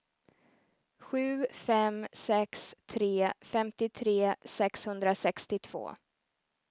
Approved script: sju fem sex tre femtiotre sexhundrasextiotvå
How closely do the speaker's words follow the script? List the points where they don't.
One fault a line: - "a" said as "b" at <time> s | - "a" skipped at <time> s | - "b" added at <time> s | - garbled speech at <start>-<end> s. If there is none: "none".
none